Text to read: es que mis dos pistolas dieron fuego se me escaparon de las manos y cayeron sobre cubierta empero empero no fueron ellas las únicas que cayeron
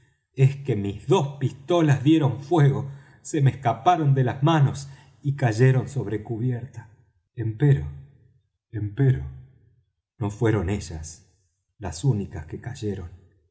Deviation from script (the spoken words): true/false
false